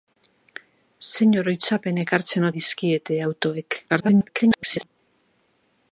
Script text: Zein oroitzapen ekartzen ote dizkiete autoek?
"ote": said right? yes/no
no